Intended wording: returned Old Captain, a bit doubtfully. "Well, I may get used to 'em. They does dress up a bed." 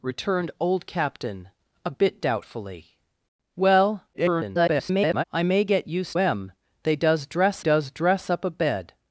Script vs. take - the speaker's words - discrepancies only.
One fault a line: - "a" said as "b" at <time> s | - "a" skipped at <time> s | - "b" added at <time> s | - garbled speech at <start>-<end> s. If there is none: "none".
- garbled speech at 4.1-5.2 s
- "to" skipped at 6.2 s
- "does dress" added at 7.6 s